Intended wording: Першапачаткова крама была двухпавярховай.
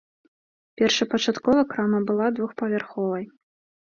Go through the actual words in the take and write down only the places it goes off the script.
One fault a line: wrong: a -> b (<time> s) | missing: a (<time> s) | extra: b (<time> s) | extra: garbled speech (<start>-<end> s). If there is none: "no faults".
no faults